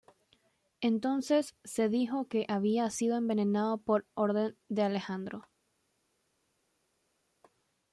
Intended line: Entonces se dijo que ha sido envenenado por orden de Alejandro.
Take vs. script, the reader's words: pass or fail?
fail